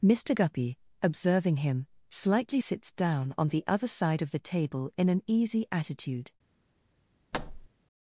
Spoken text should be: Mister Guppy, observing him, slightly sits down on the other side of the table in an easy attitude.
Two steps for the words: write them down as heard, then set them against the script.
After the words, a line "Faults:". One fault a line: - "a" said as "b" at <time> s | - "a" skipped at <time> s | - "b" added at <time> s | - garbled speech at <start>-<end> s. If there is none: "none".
Mister Guppy, observing him, slightly sits down on the other side of the table in an easy attitude.
Faults:
none